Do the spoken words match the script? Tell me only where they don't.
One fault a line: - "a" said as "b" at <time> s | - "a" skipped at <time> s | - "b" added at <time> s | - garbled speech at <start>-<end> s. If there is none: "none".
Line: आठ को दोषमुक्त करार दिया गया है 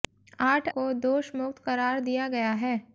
none